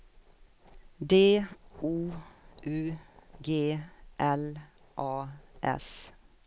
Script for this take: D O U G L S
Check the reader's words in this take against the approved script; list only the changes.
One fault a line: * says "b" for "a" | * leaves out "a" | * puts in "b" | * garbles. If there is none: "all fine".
* puts in "A"